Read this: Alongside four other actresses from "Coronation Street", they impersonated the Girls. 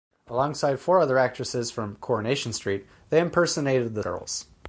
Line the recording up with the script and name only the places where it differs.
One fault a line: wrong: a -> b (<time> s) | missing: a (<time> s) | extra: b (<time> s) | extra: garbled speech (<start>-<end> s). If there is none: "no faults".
no faults